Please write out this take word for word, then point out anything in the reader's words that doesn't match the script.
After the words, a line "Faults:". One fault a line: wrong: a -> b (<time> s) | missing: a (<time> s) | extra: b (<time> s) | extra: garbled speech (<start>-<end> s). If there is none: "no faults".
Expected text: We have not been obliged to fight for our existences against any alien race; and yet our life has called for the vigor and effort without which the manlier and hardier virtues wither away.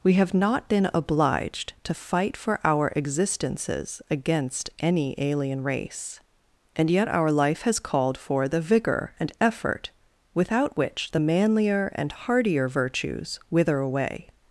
We have not been obliged to fight for our existences against any alien race; and yet our life has called for the vigor and effort without which the manlier and hardier virtues wither away.
Faults:
no faults